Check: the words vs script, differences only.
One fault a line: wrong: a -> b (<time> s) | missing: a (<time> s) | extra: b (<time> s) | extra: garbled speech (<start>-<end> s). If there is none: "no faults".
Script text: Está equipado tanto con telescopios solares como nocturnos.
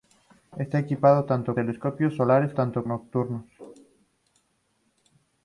missing: con (1.6 s)
wrong: como -> tanto (2.5 s)